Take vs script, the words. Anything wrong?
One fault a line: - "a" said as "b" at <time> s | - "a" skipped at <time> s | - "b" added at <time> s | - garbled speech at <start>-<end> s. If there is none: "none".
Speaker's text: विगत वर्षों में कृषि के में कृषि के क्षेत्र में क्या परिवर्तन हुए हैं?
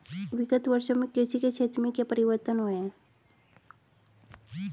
- "में कृषि के" skipped at 1.5 s